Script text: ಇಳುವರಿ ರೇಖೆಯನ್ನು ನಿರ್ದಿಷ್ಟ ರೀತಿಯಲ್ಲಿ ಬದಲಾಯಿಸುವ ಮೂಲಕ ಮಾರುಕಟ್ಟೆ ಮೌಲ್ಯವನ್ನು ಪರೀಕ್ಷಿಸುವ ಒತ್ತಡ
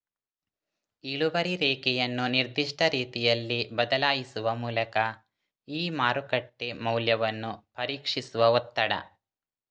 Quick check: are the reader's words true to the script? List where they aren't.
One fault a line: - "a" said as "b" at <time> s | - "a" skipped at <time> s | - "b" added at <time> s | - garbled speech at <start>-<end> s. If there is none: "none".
- "ಈ" added at 5.7 s